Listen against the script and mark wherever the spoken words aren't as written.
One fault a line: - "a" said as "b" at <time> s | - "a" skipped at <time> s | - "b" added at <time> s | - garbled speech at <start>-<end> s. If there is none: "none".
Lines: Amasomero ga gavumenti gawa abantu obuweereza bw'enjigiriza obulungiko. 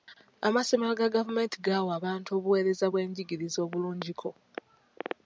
none